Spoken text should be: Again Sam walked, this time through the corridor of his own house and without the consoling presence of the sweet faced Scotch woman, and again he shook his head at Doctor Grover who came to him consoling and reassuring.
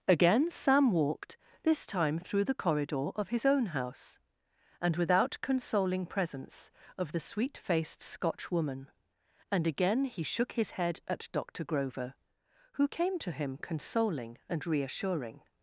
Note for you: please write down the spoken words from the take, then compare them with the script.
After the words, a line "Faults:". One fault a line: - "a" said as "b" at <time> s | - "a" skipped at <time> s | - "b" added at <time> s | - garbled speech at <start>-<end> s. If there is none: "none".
Again Sam walked, this time through the corridor of his own house and without consoling presence of the sweet faced Scotch woman, and again he shook his head at Doctor Grover who came to him consoling and reassuring.
Faults:
- "the" skipped at 5.4 s